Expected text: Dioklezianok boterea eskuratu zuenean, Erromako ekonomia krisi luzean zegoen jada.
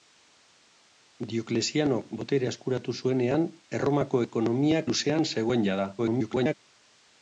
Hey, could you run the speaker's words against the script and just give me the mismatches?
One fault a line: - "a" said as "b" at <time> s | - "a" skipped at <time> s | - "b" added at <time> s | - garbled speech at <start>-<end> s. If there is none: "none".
- "krisi" skipped at 4.8 s
- garbled speech at 6.0-6.5 s